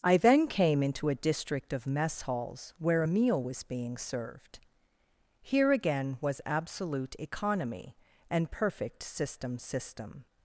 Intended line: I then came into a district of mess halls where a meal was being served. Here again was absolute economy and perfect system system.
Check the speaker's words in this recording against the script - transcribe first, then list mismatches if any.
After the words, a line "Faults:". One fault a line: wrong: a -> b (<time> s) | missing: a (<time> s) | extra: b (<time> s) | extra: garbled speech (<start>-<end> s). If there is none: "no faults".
I then came into a district of mess halls where a meal was being served. Here again was absolute economy and perfect system system.
Faults:
no faults